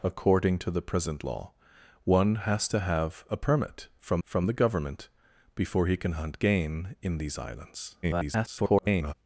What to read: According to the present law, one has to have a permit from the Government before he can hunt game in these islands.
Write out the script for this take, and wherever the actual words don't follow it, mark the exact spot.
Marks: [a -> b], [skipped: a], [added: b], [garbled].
According to the present law, one has to have a permit from [added: from] the Government before he can hunt game in these islands. [garbled]